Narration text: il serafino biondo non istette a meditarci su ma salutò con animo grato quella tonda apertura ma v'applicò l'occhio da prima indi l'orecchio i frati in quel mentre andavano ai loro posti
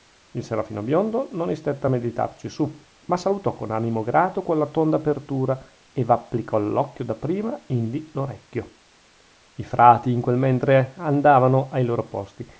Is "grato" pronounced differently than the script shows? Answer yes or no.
no